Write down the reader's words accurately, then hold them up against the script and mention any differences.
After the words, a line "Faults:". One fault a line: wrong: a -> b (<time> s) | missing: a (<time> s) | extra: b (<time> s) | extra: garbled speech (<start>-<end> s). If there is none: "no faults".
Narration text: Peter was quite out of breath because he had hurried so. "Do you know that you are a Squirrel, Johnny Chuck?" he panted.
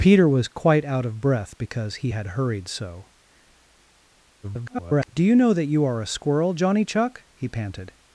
Peter was quite out of breath because he had hurried so. [garbled] "Do you know that you are a Squirrel, Johnny Chuck?" he panted.
Faults:
extra: garbled speech (4.4-5.1 s)